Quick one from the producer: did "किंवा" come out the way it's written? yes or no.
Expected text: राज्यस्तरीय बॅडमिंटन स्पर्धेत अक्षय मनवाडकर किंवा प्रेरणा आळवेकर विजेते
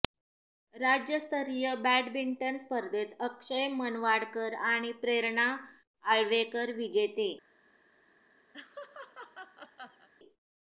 no